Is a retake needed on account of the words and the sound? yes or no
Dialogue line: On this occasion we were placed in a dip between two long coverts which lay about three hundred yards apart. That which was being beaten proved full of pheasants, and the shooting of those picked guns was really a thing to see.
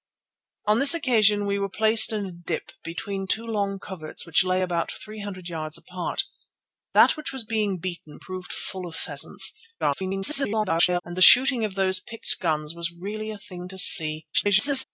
yes